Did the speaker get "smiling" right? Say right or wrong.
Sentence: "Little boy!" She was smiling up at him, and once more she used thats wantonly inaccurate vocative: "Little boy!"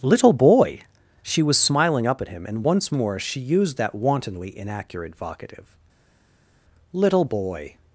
right